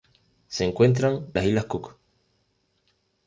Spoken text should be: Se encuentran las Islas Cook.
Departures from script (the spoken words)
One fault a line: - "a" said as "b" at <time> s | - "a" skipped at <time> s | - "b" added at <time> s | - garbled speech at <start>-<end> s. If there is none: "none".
none